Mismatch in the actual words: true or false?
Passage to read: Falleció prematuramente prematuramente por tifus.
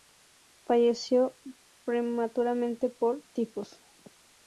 true